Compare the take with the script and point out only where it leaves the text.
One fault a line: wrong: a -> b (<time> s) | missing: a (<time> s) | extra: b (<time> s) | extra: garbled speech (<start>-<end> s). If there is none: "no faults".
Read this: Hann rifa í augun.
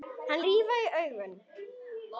no faults